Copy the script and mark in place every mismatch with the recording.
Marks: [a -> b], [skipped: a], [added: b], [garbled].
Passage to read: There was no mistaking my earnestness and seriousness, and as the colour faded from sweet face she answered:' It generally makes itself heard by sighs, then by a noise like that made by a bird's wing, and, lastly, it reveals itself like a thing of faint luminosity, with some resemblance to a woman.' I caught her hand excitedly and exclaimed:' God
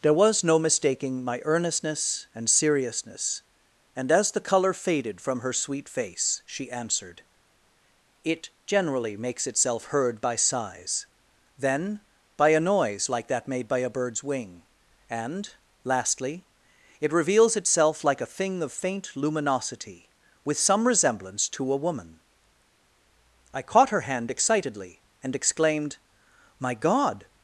There was no mistaking my earnestness and seriousness, and as the colour faded from [added: her] sweet face she answered:' It generally makes itself heard by sighs, then by a noise like that made by a bird's wing, and, lastly, it reveals itself like a thing of faint luminosity, with some resemblance to a woman.' I caught her hand excitedly and exclaimed:' [added: My] God